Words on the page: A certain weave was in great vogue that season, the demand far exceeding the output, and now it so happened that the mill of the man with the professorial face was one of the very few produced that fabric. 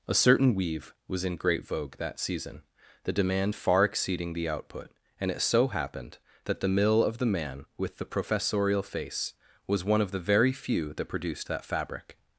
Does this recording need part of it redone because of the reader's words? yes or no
yes